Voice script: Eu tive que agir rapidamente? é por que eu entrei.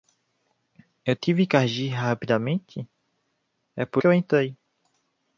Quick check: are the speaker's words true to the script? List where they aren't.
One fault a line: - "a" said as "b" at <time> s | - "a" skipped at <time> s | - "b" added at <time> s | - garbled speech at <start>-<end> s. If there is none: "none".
none